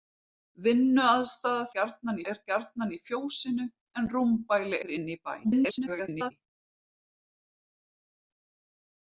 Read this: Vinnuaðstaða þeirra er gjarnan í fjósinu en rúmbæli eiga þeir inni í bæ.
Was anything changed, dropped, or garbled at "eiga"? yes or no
yes